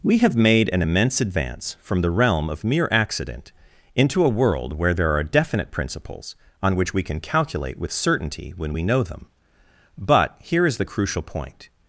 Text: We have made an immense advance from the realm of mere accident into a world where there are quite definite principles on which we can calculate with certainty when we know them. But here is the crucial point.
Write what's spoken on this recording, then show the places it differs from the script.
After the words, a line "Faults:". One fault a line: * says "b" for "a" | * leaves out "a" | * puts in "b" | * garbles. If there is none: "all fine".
We have made an immense advance from the realm of mere accident into a world where there are definite principles on which we can calculate with certainty when we know them. But here is the crucial point.
Faults:
* leaves out "quite"